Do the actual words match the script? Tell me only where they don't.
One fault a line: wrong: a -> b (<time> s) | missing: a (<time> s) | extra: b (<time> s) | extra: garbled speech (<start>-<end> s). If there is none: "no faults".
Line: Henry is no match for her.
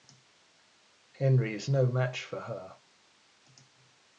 no faults